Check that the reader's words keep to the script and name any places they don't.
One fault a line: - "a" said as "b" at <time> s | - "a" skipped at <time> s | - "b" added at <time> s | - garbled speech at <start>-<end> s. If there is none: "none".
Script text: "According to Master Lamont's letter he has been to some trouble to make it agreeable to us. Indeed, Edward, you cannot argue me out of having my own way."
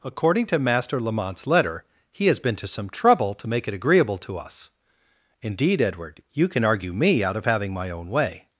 - "cannot" said as "can" at 6.5 s